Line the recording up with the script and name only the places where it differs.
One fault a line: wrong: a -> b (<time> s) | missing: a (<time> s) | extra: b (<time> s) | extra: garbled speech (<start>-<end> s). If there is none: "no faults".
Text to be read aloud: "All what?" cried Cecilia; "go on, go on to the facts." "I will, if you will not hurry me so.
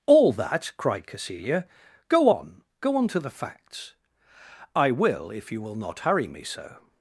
wrong: what -> that (0.3 s)